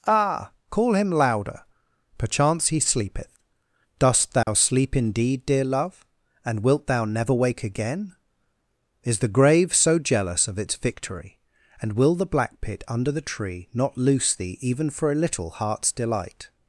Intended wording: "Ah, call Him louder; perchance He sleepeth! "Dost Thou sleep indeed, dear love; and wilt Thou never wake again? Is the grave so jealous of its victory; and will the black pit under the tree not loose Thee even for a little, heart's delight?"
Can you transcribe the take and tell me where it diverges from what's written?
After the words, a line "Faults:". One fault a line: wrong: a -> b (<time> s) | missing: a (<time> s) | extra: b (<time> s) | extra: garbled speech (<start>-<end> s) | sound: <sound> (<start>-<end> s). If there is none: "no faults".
"Ah, call Him louder; perchance He sleepeth! "Dost Thou sleep indeed, dear love; and wilt Thou never wake again? Is the grave so jealous of its victory; and will the black pit under the tree not loose Thee even for a little, heart's delight?"
Faults:
sound: dropout (4.4-4.5 s)